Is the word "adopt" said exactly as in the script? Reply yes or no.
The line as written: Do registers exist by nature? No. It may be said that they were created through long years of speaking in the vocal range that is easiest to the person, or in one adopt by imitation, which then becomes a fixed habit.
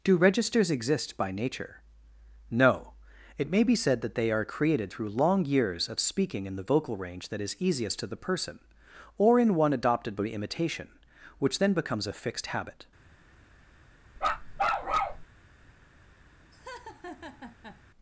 no